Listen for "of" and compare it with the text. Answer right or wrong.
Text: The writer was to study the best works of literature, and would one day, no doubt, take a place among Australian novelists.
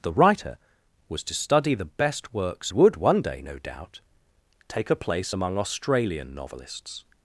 wrong